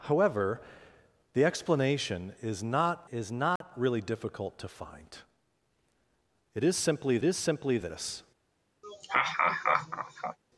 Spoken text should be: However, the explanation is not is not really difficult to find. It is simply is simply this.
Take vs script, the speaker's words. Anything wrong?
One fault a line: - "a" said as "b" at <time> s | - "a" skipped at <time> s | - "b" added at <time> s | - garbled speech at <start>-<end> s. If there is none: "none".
none